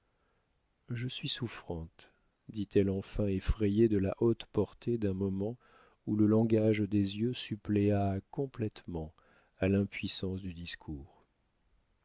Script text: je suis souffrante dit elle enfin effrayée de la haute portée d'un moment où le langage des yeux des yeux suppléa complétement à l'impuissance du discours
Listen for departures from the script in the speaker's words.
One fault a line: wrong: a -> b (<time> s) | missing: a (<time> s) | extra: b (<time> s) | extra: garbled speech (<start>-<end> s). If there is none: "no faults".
missing: des yeux (7.3 s)